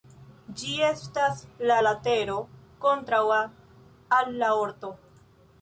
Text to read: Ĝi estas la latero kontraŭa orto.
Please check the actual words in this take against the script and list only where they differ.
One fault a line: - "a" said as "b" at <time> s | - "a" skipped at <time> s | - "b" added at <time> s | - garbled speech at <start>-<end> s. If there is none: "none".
- "al la" added at 4.2 s